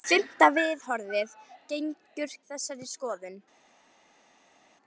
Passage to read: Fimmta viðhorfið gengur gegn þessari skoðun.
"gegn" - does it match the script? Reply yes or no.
no